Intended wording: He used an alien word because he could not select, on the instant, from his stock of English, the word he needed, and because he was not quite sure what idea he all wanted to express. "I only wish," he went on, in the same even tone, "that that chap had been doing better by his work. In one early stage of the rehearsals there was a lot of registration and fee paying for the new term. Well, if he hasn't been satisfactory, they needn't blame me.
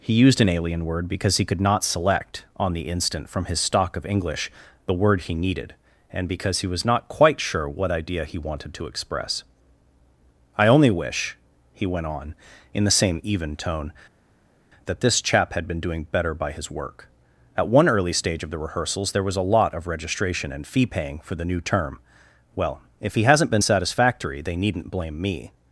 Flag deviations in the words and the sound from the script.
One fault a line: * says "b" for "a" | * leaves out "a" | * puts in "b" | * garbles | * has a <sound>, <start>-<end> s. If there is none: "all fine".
* leaves out "all"
* says "this" for "that"
* says "At" for "In"